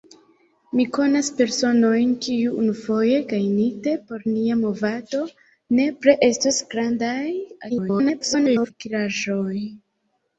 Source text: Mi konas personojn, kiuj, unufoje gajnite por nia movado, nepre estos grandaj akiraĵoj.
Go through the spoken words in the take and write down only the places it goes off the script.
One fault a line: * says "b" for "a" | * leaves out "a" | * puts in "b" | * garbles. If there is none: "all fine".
* garbles